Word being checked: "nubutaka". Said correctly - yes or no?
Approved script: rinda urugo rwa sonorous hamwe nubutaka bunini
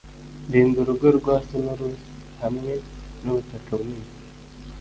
yes